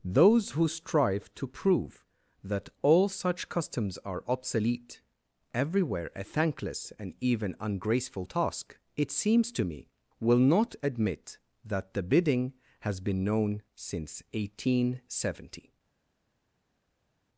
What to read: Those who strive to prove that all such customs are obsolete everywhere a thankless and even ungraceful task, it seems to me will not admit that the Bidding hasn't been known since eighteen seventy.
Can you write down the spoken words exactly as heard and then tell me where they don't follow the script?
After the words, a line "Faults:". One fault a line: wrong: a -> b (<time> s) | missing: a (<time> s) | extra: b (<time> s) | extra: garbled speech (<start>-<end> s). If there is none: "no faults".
Those who strive to prove that all such customs are obsolete everywhere a thankless and even ungraceful task, it seems to me will not admit that the Bidding has been known since eighteen seventy.
Faults:
wrong: hasn't -> has (12.8 s)